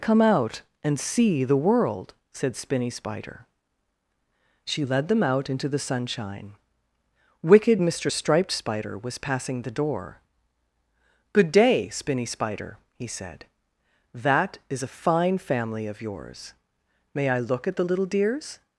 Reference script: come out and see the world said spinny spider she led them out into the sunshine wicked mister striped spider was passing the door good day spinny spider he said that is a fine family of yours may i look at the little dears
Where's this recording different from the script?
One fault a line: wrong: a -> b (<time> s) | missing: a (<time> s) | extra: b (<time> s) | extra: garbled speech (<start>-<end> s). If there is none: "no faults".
no faults